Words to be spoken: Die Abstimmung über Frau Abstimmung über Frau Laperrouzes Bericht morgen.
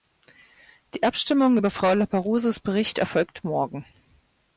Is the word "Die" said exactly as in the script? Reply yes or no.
yes